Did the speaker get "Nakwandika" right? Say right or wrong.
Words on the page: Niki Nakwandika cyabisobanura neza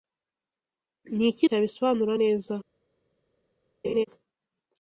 wrong